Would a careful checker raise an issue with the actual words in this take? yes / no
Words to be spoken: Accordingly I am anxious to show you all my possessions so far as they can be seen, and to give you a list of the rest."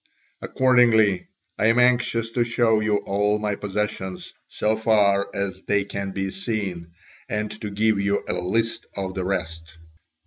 no